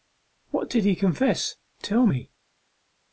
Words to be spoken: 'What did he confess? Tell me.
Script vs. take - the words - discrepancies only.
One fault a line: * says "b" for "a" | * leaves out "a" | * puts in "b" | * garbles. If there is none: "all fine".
all fine